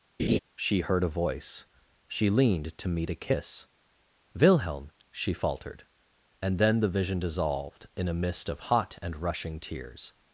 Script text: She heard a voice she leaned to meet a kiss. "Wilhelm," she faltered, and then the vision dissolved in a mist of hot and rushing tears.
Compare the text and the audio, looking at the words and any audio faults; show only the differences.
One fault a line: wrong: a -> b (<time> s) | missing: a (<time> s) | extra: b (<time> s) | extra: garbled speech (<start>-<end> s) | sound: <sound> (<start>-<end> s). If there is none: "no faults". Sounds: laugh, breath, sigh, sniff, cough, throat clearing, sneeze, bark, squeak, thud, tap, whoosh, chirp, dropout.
sound: laugh (0.2-0.4 s)